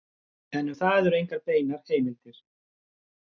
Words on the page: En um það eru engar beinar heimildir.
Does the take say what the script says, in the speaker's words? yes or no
yes